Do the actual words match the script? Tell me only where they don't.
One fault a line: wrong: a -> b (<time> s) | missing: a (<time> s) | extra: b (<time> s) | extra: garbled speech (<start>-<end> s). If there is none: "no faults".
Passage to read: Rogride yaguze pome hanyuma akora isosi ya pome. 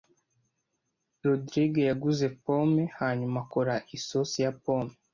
no faults